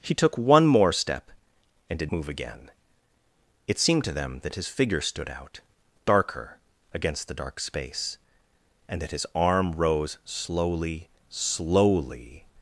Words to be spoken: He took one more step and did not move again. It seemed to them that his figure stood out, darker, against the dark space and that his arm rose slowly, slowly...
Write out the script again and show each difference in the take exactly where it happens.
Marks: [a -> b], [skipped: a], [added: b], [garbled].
He took one more step and did [skipped: not] move again. It seemed to them that his figure stood out, darker, against the dark space and that his arm rose slowly, slowly...